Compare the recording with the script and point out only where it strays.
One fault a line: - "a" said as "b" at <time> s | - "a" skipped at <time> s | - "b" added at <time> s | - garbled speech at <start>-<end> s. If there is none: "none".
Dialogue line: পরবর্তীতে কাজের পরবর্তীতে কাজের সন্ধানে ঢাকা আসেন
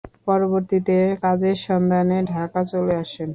- "পরবর্তীতে কাজের" skipped at 1.6 s
- "চলে" added at 2.6 s